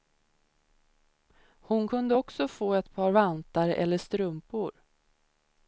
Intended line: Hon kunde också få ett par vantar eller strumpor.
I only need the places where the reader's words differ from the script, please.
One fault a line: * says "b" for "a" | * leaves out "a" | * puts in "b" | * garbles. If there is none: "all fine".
all fine